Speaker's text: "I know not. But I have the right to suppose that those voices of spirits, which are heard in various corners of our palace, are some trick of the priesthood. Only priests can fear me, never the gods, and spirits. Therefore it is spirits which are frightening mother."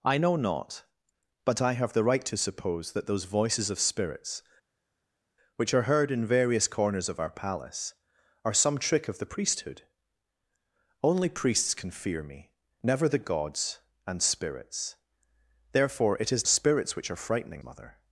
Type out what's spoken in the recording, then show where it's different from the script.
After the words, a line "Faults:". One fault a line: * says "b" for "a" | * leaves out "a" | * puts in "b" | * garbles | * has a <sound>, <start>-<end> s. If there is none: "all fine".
"I know not. But I have the right to suppose that those voices of spirits, which are heard in various corners of our palace, are some trick of the priesthood. Only priests can fear me, never the gods, and spirits. Therefore it is spirits which are frightening mother."
Faults:
all fine